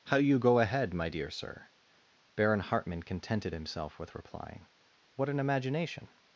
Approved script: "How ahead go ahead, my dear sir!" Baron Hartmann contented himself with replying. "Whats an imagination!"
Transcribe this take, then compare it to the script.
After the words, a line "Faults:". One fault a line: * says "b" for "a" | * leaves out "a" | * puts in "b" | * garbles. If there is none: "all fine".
"How you go ahead, my dear sir!" Baron Hartmann contented himself with replying. "What an imagination!"
Faults:
* says "you" for "ahead"
* says "What" for "Whats"